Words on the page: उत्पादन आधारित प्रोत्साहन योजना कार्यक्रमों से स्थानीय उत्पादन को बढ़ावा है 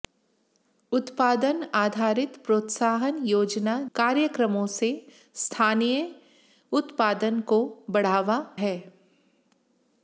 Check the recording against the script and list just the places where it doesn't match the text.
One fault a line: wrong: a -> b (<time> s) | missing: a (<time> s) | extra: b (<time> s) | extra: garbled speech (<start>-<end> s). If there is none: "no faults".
no faults